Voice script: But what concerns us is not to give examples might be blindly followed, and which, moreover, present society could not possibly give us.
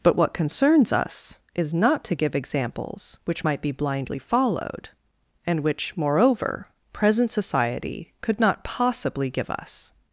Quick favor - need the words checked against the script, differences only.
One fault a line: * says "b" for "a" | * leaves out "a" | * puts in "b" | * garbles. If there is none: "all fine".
* puts in "which"